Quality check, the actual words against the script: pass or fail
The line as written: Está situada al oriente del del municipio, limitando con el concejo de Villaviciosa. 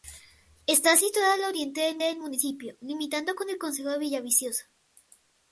pass